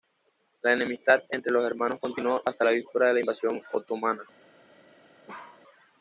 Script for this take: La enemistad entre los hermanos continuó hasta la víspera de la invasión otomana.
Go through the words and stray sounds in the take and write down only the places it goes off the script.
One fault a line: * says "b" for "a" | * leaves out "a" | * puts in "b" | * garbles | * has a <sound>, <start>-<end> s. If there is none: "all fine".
* has a bark, 5.3-5.6 s